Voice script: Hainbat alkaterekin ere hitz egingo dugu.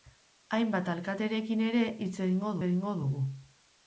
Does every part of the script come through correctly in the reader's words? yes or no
no